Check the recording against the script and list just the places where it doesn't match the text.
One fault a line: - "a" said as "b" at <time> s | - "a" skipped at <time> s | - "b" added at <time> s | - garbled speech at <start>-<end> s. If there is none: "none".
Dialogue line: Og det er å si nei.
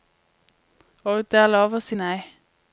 - "lov" added at 1.5 s